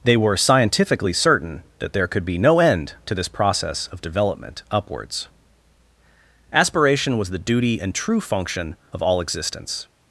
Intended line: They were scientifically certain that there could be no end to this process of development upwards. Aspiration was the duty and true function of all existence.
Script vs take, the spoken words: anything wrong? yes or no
no